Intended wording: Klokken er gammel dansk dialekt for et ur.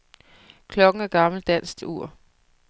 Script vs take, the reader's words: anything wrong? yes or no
yes